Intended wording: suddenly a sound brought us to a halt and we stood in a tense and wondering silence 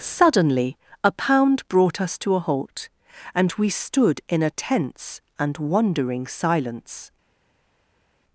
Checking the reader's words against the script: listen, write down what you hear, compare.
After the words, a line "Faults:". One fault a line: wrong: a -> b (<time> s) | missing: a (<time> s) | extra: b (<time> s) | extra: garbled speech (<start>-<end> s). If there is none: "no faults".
suddenly a pound brought us to a halt and we stood in a tense and wondering silence
Faults:
wrong: sound -> pound (1.1 s)